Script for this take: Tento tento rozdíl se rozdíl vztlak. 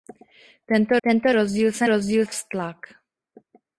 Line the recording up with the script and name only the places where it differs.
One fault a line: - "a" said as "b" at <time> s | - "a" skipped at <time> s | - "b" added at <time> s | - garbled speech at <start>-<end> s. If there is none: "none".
none